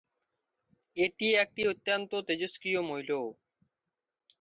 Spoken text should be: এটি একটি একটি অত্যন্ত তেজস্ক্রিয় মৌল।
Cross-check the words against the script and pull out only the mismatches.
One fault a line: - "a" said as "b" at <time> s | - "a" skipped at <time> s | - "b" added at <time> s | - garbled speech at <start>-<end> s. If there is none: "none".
- "একটি" skipped at 1.6 s